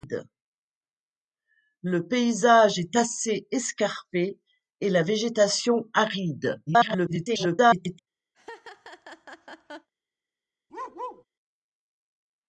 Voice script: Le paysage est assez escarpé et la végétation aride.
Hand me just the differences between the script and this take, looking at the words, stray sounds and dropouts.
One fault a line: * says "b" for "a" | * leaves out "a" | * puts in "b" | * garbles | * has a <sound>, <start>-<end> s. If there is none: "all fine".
* garbles
* has a laugh, 8.3-9.9 s
* has a bark, 10.7-11.2 s